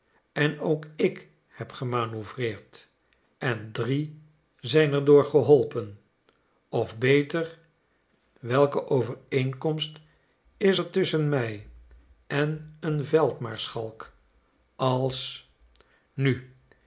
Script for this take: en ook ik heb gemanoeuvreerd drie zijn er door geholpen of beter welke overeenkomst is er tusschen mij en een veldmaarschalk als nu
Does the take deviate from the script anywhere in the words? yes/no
yes